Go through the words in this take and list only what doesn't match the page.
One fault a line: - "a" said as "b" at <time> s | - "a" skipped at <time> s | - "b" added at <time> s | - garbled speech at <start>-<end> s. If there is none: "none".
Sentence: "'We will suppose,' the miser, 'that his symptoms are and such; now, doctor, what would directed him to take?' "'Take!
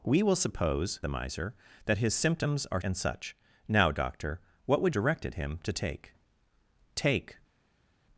none